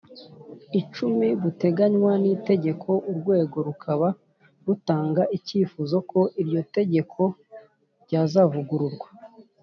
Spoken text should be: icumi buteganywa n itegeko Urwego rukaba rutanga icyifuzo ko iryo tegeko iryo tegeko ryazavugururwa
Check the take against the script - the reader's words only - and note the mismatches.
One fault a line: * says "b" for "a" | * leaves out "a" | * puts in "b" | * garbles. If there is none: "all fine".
* leaves out "iryo tegeko"